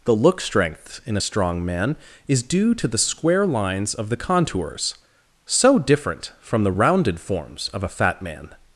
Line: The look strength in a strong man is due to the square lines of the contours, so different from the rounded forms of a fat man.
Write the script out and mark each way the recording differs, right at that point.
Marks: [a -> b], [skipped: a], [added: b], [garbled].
The look strength in a strong man is due to the square lines of the contours, so different from the rounded forms of a fat man.